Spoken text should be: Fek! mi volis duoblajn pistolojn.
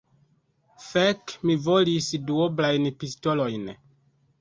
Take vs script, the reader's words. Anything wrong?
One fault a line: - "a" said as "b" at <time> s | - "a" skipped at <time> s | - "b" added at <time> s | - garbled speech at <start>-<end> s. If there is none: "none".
none